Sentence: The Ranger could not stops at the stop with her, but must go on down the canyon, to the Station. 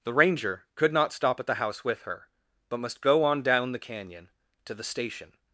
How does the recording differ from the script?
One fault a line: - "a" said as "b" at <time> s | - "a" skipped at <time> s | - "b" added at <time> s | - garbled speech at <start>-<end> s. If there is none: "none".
- "stops" said as "stop" at 1.1 s
- "stop" said as "house" at 1.6 s